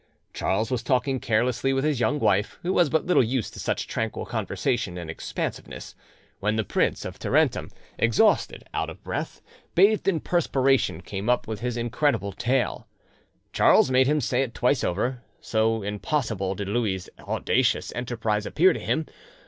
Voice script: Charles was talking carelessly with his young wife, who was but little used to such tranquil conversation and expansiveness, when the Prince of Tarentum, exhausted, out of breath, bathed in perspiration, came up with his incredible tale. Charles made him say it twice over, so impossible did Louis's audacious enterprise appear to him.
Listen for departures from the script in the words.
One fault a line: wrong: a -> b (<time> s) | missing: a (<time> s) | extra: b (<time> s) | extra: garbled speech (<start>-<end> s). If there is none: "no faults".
no faults